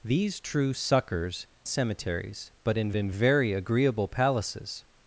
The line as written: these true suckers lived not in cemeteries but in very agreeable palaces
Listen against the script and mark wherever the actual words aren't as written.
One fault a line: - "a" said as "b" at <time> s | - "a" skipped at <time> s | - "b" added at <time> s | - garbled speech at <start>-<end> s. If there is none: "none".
- "lived not" said as "cemeteries but" at 1.7 s
- "cemeteries but" skipped at 2.9 s